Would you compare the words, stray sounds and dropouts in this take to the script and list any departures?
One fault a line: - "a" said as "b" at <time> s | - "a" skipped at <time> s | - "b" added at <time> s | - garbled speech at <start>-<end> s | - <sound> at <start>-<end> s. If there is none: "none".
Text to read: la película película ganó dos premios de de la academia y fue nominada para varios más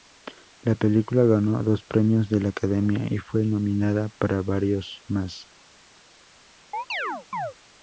- "película" skipped at 1.2 s
- "de" skipped at 2.4 s
- chirp at 6.7-7.5 s